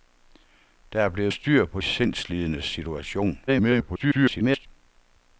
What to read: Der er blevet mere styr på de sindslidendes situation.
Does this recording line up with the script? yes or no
no